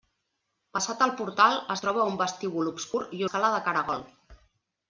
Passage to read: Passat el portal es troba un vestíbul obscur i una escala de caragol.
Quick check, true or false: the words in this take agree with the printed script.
false